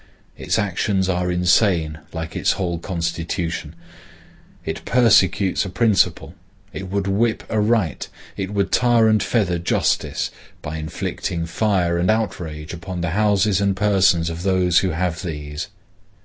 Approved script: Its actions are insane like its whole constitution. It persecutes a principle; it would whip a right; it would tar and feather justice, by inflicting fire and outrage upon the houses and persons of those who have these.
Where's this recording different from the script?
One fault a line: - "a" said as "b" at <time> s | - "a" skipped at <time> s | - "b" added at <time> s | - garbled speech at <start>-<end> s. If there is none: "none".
none